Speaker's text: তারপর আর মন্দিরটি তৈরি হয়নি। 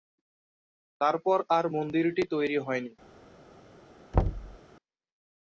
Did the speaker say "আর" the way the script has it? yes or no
yes